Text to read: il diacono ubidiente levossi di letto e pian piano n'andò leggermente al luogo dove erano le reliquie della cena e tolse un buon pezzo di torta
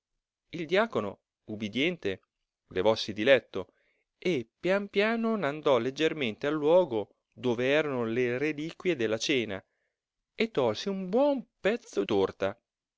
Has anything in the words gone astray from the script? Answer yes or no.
yes